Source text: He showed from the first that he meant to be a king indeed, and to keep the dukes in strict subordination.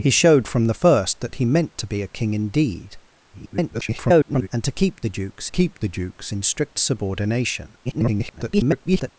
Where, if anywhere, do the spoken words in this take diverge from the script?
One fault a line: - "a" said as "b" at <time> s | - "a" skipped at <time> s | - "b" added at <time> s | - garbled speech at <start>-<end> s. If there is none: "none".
- garbled speech at 3.3-4.5 s
- "keep the dukes" added at 5.5 s
- garbled speech at 7.8-9.1 s